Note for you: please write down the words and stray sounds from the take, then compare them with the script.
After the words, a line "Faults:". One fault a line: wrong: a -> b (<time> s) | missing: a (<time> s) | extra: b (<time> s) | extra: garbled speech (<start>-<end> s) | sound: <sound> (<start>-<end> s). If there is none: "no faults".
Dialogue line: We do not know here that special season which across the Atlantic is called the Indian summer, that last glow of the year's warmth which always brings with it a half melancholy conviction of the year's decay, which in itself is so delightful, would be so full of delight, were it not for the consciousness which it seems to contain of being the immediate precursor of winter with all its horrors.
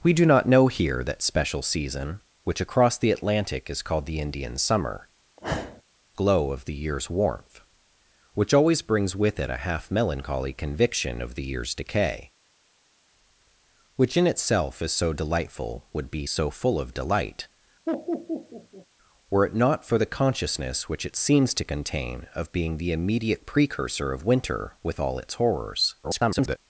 We do not know here that special season which across the Atlantic is called the Indian summer, glow of the year's warmth which always brings with it a half melancholy conviction of the year's decay, which in itself is so delightful, would be so full of delight, were it not for the consciousness which it seems to contain of being the immediate precursor of winter with all its horrors. [garbled]
Faults:
missing: that last (5.1 s)
sound: sniff (5.4-5.8 s)
sound: laugh (17.9-18.9 s)
extra: garbled speech (26.0-26.6 s)